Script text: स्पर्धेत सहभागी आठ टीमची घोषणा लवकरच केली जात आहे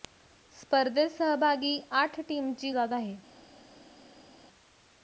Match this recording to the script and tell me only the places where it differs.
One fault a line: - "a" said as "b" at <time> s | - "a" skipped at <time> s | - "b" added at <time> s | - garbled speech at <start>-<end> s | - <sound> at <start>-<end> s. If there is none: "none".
- "घोषणा लवकरच केली" skipped at 2.7 s